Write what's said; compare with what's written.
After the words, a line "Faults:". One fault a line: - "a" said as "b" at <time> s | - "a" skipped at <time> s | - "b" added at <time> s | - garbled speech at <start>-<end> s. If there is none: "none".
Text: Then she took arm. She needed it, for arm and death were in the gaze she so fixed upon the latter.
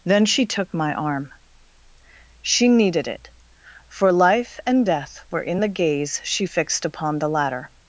Then she took my arm. She needed it, for life and death were in the gaze she fixed upon the latter.
Faults:
- "my" added at 0.7 s
- "arm" said as "life" at 4.1 s
- "so" skipped at 6.4 s